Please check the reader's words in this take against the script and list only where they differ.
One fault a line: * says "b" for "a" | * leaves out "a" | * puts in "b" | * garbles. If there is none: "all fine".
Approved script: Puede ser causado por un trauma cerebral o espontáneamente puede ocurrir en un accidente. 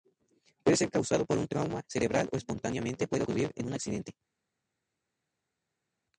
all fine